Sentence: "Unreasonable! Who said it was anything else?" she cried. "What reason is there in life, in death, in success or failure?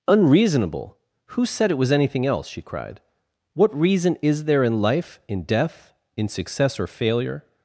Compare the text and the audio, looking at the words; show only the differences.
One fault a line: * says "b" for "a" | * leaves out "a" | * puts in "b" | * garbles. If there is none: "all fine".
all fine